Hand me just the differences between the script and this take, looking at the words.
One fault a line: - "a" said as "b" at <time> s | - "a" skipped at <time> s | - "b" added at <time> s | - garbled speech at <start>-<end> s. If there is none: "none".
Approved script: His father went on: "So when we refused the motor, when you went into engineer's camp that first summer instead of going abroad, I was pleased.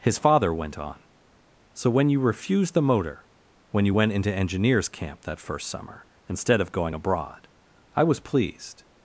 - "we" said as "you" at 2.1 s